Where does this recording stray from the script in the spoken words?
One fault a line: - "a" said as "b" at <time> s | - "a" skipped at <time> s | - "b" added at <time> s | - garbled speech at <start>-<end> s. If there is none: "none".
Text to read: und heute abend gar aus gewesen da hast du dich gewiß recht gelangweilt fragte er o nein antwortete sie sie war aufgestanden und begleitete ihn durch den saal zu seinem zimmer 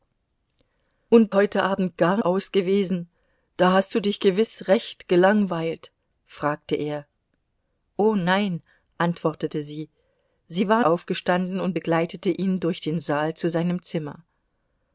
none